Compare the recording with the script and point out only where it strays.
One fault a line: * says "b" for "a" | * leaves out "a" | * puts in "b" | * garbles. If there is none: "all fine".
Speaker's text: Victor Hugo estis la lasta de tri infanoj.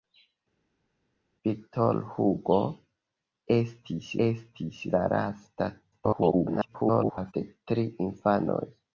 * puts in "estis"
* garbles